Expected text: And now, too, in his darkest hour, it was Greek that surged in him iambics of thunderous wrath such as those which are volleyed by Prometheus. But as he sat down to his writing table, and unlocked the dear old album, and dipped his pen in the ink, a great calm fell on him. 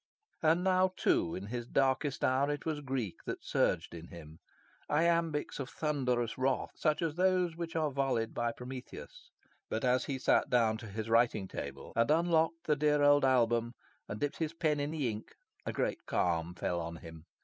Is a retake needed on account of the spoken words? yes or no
no